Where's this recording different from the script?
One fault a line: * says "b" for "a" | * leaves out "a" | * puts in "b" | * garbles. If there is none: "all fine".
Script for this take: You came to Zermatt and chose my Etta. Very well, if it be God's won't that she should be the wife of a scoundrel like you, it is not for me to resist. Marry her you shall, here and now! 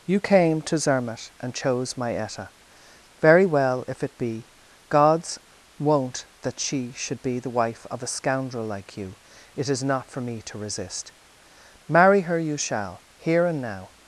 all fine